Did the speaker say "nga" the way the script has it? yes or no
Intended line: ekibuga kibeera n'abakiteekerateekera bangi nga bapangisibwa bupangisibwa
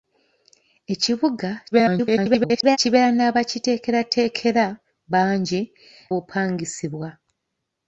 no